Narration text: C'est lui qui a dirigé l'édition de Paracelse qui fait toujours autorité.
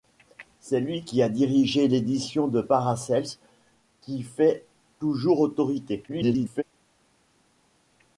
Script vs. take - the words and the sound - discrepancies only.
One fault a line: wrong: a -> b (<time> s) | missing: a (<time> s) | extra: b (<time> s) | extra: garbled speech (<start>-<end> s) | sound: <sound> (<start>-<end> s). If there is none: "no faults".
extra: garbled speech (6.1-6.6 s)